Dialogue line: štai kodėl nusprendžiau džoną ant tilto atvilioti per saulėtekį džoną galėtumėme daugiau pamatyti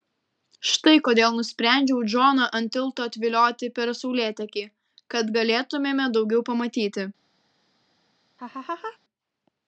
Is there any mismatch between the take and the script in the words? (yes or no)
yes